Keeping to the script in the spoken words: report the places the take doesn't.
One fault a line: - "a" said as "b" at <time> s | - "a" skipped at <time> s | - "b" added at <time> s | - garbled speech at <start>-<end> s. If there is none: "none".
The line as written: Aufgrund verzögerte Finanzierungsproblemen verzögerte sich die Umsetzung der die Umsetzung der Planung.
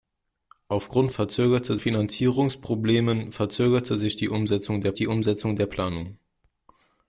none